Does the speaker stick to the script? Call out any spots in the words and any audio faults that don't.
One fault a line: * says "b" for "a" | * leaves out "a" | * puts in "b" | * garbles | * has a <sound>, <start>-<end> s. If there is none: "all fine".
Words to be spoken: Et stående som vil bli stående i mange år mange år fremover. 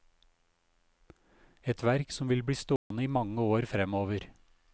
* says "verk" for "stående"
* has a dropout, 2.8-2.9 s
* leaves out "mange år"